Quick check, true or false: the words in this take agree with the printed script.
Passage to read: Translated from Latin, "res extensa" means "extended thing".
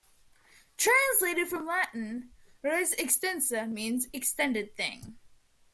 true